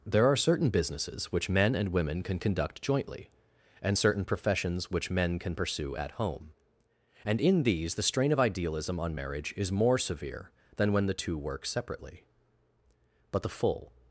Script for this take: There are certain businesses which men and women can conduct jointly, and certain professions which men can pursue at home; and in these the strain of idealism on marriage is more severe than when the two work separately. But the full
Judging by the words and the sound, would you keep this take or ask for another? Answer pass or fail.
pass